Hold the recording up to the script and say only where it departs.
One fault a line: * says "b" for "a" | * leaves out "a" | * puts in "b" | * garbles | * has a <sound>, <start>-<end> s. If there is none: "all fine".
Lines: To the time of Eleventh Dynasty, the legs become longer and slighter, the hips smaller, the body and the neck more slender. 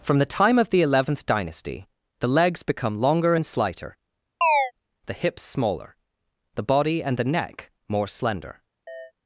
* says "From" for "To"
* puts in "the"
* has a chirp, 4.4-4.7 s
* has a chirp, 8.9-9.1 s